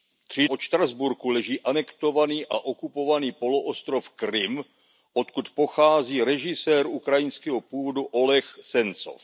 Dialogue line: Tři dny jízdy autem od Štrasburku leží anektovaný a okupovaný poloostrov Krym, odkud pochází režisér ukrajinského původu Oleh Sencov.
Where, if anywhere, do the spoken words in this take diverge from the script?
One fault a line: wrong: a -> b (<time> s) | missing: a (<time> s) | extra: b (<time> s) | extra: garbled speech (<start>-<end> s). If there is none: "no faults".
missing: dny jízdy autem (0.5 s)